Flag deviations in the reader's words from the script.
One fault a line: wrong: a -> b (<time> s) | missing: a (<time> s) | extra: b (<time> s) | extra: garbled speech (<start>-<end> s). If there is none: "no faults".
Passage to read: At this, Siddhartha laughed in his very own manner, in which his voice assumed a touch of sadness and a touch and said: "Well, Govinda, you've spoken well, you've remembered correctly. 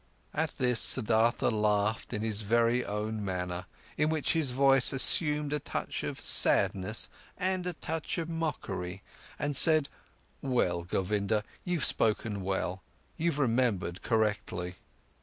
extra: of mockery (8.2 s)